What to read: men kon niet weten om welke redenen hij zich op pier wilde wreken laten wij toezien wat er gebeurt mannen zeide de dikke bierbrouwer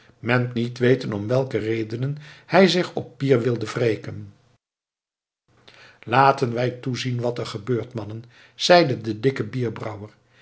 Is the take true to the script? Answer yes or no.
no